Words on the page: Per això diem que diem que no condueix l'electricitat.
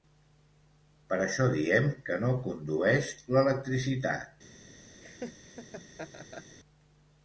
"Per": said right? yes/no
yes